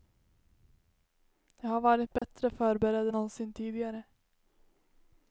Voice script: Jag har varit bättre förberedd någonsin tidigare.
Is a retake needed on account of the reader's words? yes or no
no